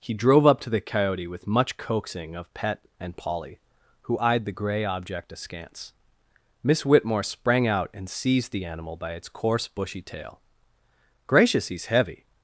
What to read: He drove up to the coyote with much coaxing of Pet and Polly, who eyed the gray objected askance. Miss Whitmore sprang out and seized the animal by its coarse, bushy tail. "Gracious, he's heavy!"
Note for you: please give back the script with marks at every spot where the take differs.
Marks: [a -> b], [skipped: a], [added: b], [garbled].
He drove up to the coyote with much coaxing of Pet and Polly, who eyed the gray [objected -> object] askance. Miss Whitmore sprang out and seized the animal by its coarse, bushy tail. "Gracious, he's heavy!"